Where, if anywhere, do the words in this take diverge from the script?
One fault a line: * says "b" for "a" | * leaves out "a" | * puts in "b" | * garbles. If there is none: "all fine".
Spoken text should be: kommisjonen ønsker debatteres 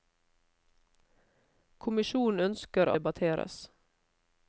all fine